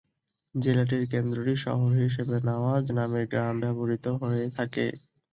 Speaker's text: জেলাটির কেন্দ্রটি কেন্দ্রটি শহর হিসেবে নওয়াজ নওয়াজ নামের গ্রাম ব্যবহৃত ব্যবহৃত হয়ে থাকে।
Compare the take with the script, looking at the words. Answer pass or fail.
fail